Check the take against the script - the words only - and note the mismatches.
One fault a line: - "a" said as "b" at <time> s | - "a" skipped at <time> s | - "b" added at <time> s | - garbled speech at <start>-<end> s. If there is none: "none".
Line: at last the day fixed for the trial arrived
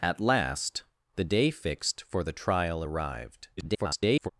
- garbled speech at 3.6-4.3 s